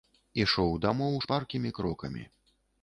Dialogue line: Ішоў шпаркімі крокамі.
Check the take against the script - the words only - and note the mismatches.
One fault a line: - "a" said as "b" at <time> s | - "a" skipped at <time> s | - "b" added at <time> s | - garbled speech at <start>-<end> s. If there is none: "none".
- "дамоў" added at 0.9 s